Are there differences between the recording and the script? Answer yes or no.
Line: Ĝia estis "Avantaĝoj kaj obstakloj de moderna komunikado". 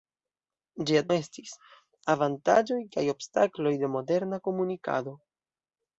no